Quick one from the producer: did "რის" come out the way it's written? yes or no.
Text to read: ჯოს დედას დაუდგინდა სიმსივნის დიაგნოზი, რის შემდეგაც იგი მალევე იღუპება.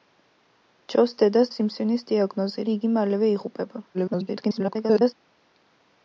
no